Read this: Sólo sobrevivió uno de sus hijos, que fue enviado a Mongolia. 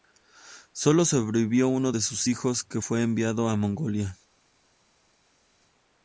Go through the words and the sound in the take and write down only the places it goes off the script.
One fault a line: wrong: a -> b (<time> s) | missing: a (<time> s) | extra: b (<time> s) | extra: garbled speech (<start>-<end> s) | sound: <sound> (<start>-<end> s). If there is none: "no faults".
no faults